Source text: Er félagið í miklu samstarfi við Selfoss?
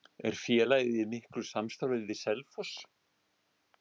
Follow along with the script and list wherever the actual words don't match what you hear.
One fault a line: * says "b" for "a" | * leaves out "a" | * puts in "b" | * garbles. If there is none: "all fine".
all fine